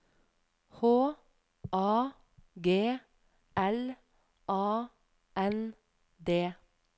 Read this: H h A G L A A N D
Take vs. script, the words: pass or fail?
fail